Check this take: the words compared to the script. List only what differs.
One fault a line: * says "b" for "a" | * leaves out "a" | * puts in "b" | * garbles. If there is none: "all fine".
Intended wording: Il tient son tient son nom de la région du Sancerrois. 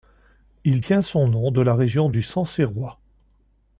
* leaves out "tient son"